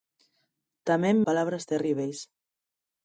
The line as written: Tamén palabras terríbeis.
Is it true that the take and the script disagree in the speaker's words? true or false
false